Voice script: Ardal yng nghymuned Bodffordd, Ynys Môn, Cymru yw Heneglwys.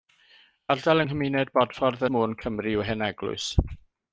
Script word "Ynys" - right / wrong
wrong